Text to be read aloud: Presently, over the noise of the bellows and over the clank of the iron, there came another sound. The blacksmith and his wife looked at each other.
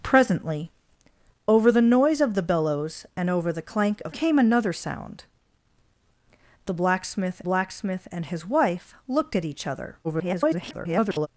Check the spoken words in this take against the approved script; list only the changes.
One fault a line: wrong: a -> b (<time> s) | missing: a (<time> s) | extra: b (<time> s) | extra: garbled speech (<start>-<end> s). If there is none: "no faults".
missing: the iron there (4.2 s)
extra: blacksmith (7.4 s)
extra: garbled speech (10.0-11.3 s)